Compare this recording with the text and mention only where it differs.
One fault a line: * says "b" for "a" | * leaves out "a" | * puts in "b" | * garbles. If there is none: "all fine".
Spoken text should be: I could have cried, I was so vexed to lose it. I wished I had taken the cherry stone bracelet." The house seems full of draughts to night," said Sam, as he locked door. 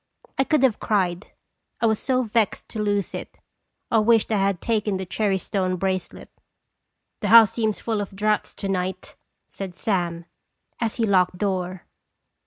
all fine